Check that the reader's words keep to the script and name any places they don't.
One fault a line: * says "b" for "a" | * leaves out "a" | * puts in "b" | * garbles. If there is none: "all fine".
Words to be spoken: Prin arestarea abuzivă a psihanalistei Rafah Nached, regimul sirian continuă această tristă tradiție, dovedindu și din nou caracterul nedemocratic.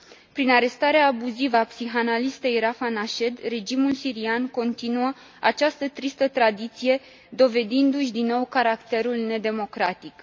all fine